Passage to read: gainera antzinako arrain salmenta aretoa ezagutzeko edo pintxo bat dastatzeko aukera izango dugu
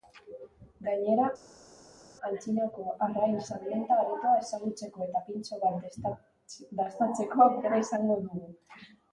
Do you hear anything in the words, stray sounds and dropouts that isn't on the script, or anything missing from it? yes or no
yes